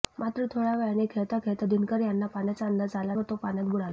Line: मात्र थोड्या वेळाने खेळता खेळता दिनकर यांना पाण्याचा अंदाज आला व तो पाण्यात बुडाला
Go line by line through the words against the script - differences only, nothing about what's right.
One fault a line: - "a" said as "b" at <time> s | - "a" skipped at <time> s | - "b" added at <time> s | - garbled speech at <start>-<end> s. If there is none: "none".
none